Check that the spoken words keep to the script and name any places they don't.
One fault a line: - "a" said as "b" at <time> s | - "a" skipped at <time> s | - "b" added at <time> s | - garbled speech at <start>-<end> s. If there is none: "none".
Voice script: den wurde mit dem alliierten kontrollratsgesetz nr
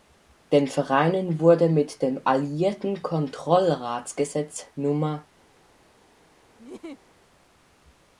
- "vereinen" added at 0.7 s